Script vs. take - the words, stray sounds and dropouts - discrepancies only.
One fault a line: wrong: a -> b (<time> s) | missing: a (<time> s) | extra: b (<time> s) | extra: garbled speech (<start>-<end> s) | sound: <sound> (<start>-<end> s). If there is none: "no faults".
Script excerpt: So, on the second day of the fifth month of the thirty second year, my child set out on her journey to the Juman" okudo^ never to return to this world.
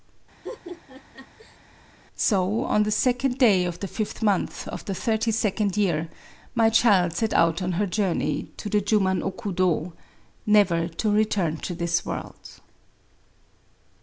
sound: laugh (0.4-1.6 s)